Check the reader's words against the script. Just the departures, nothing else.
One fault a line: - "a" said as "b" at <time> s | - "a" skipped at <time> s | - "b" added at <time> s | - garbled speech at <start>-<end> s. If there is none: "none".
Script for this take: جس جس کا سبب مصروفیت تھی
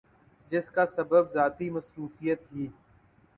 - "جس" skipped at 0.7 s
- "ذاتی" added at 1.3 s